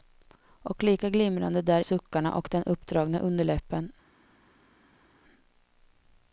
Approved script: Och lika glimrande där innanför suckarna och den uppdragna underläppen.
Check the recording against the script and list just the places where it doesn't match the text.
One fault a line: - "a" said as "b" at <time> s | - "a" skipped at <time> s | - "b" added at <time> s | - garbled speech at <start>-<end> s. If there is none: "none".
- "innanför" skipped at 1.8 s